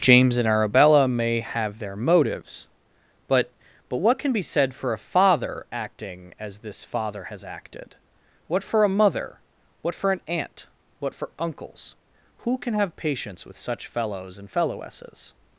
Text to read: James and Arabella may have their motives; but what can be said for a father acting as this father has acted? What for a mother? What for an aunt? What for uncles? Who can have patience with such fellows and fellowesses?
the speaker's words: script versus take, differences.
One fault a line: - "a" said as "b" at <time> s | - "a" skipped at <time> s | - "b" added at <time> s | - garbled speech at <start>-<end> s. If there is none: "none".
- "but" added at 3.9 s